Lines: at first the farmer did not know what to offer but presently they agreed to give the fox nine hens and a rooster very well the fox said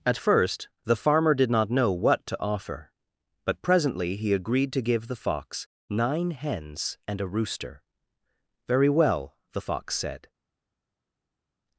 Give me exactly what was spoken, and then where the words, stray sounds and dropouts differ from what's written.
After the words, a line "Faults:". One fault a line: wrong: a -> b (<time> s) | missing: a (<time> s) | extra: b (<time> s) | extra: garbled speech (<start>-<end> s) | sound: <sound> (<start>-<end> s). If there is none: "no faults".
at first the farmer did not know what to offer but presently he agreed to give the fox nine hens and a rooster very well the fox said
Faults:
wrong: they -> he (4.1 s)